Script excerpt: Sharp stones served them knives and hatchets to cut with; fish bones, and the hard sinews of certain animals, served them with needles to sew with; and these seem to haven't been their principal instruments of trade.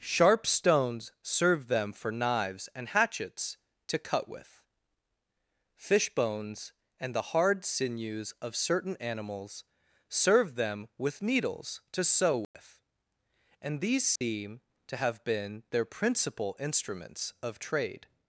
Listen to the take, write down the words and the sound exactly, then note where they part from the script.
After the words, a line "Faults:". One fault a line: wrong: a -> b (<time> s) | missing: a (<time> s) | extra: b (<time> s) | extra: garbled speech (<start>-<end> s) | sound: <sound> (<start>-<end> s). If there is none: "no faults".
Sharp stones served them for knives and hatchets to cut with; fish bones, and the hard sinews of certain animals, served them with needles to sew with; and these seem to have been their principal instruments of trade.
Faults:
extra: for (1.9 s)
sound: dropout (12.4-12.5 s)
sound: dropout (14.2-14.2 s)
wrong: haven't -> have (15.0 s)